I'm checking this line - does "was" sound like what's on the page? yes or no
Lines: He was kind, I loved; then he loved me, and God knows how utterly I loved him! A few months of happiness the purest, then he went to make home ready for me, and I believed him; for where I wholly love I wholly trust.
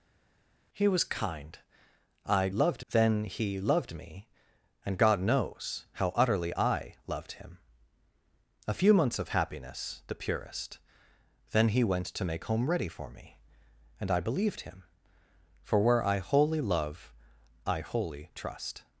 yes